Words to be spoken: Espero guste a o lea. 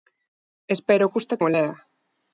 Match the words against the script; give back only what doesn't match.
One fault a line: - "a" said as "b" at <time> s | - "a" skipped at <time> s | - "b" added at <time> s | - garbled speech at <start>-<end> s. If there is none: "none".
none